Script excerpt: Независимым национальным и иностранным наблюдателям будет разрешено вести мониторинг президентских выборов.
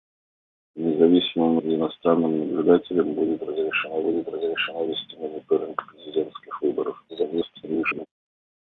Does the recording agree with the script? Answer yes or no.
no